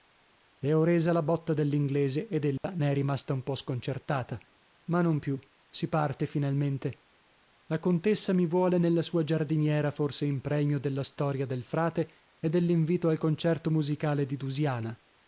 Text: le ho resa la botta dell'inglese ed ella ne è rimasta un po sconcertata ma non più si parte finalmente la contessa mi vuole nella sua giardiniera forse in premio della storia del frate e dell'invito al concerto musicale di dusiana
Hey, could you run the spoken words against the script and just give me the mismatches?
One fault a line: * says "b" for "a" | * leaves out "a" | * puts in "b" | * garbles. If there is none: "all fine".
all fine